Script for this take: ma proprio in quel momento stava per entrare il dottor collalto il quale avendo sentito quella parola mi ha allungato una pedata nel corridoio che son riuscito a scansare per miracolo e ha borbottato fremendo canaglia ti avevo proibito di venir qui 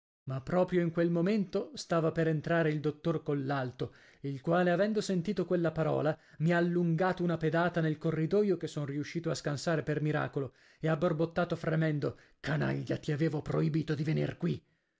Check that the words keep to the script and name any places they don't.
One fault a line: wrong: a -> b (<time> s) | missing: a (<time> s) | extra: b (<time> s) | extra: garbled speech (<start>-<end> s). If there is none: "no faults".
no faults